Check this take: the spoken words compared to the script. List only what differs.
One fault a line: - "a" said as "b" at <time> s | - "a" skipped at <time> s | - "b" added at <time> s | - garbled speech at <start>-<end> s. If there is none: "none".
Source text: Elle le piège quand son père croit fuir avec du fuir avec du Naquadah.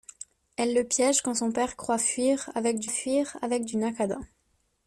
none